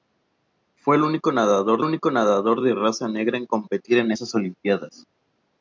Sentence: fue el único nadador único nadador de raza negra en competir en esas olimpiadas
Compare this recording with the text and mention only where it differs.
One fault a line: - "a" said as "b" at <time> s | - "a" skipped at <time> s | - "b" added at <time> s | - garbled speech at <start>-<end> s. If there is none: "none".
none